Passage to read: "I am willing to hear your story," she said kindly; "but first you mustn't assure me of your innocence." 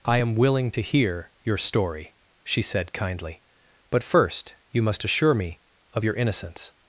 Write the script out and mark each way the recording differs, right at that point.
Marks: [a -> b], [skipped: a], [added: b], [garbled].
"I am willing to hear your story," she said kindly; "but first you [mustn't -> must] assure me of your innocence."